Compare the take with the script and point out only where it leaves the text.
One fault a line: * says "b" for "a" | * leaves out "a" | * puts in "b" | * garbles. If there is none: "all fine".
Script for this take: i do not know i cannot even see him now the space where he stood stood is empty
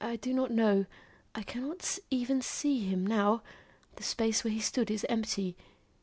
* leaves out "stood"